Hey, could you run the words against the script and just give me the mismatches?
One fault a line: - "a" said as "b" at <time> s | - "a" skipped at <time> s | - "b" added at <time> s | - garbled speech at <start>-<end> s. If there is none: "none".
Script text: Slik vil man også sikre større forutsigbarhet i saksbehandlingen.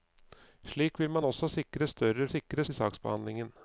- "forutsigbarhet" said as "sikre" at 2.2 s